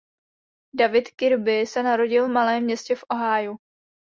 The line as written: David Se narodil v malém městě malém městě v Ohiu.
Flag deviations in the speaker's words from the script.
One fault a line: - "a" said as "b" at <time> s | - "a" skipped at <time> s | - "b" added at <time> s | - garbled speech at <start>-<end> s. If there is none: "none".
- "Kirby" added at 1.1 s
- "malém městě" skipped at 3.0 s